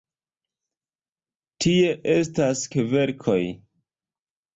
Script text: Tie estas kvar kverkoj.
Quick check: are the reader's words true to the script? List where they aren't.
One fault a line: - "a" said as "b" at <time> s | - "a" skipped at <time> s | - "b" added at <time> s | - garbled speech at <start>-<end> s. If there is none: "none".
- "kvar" skipped at 2.6 s